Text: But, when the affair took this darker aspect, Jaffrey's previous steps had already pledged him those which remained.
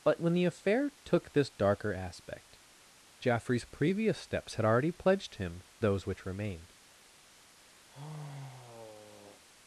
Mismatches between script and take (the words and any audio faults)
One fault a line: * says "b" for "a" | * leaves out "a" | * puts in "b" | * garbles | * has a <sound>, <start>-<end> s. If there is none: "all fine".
* has a sigh, 7.9-9.4 s